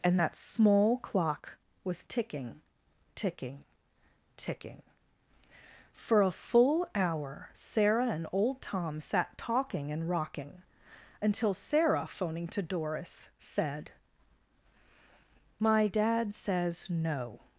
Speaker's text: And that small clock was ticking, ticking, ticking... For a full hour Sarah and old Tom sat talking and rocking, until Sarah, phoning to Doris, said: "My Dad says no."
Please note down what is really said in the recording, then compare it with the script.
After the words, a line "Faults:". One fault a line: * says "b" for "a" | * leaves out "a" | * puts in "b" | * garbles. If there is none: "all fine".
And that small clock was ticking, ticking, ticking... For a full hour Sarah and old Tom sat talking and rocking, until Sarah, phoning to Doris, said: "My Dad says no."
Faults:
all fine